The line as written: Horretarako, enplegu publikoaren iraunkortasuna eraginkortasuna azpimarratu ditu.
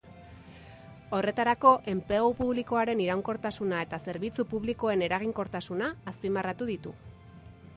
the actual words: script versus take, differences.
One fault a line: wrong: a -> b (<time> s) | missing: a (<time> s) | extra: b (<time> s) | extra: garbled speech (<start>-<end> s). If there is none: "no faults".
extra: eta zerbitzu publikoen (3.9 s)